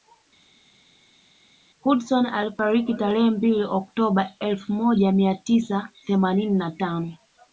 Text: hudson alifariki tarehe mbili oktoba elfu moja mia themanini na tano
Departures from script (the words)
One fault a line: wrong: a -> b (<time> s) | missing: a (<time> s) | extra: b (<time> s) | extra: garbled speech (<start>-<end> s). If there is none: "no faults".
extra: tisa (5.3 s)